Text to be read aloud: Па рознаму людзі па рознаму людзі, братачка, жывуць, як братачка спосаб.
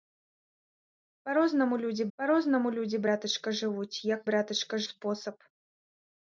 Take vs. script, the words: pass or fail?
pass